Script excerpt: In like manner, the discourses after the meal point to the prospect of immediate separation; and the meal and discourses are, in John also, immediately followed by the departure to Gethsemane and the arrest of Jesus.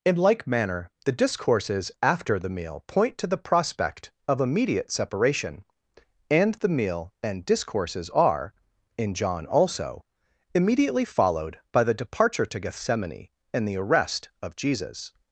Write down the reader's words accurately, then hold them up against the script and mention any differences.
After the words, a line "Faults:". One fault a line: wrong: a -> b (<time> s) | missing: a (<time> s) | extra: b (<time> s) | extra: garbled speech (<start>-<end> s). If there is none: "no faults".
In like manner, the discourses after the meal point to the prospect of immediate separation; and the meal and discourses are, in John also, immediately followed by the departure to Gethsemane and the arrest of Jesus.
Faults:
no faults